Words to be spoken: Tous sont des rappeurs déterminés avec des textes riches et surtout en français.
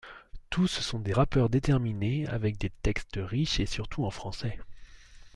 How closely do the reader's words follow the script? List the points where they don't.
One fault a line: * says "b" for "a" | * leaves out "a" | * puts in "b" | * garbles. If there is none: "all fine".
all fine